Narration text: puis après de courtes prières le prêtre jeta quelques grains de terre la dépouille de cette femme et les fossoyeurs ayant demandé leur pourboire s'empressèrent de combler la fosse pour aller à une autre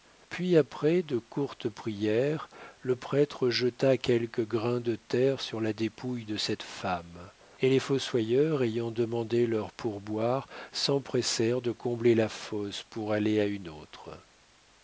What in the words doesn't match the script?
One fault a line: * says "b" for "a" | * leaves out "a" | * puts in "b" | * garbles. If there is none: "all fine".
* puts in "sur"